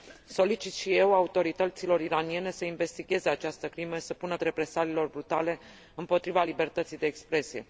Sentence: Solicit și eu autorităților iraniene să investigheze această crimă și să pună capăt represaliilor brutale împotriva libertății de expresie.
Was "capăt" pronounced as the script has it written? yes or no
no